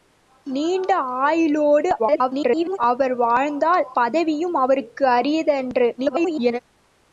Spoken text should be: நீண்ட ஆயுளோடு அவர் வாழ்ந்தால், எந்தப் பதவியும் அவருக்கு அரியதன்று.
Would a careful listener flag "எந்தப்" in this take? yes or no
yes